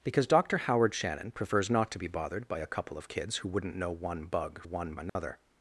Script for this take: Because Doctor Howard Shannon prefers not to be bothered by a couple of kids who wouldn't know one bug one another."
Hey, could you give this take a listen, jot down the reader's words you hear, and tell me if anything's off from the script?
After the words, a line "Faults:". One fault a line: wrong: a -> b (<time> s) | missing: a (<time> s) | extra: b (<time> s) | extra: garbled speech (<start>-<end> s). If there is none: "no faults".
Because Doctor Howard Shannon prefers not to be bothered by a couple of kids who wouldn't know one bug one another."
Faults:
no faults